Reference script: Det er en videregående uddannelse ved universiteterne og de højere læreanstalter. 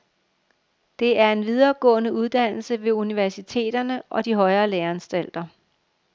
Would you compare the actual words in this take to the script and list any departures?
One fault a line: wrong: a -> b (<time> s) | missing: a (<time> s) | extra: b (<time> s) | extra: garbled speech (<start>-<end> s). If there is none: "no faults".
no faults